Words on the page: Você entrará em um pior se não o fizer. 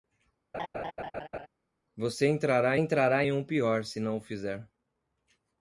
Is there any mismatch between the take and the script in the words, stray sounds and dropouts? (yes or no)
yes